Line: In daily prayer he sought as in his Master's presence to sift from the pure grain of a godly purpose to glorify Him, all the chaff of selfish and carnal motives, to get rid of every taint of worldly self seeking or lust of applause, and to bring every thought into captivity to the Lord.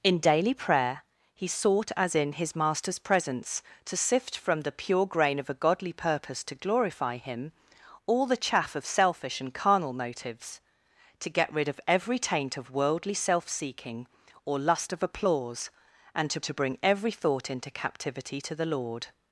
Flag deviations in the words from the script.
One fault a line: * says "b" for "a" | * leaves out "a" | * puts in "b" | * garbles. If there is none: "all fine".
* puts in "to"